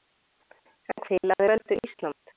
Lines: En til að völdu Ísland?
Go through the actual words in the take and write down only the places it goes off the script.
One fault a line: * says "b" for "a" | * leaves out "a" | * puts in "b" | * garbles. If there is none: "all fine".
all fine